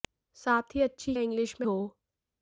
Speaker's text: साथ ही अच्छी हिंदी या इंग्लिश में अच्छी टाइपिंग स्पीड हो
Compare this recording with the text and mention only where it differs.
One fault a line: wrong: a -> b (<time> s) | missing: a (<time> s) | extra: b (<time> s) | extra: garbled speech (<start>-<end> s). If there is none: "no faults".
missing: हिंदी (1.1 s)
missing: अच्छी टाइपिंग स्पीड (1.7 s)